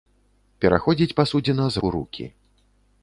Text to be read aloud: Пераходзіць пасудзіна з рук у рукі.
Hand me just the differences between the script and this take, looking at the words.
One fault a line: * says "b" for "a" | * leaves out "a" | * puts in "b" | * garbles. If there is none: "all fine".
* leaves out "рук"